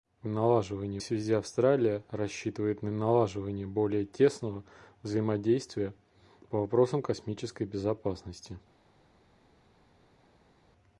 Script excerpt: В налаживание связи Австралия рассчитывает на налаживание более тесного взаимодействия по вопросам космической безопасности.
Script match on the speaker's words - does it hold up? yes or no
yes